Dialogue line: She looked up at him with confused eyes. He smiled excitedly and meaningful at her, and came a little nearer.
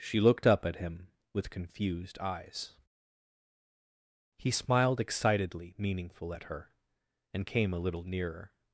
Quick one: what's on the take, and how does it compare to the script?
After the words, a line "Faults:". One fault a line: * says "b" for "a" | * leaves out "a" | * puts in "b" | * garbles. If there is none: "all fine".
She looked up at him with confused eyes. He smiled excitedly meaningful at her, and came a little nearer.
Faults:
* leaves out "and"